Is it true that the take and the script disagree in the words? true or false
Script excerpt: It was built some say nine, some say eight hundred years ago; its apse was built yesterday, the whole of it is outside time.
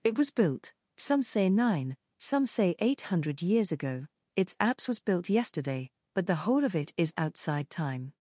true